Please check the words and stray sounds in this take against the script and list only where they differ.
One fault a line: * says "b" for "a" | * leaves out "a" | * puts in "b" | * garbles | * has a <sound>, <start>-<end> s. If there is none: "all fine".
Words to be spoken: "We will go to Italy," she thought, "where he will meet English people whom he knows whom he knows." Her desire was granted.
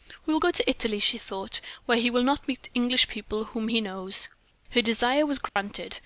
* puts in "not"
* leaves out "whom he knows"
* has a dropout, 5.5-5.6 s